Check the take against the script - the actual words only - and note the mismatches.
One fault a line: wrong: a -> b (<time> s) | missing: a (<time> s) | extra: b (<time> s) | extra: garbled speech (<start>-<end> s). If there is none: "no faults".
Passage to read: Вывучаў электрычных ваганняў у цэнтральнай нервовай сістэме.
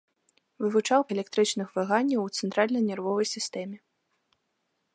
no faults